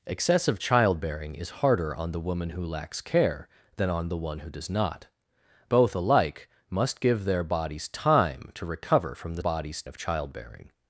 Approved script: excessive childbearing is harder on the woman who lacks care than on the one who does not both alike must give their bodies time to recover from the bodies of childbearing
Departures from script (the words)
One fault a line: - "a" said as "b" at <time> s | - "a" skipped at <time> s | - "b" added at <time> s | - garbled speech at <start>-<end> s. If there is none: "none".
none